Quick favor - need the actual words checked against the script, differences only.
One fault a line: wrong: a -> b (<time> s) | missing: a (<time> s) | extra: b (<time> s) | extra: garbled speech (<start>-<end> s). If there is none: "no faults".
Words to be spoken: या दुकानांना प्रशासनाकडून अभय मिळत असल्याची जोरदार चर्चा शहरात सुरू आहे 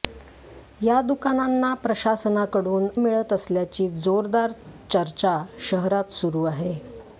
missing: अभय (2.9 s)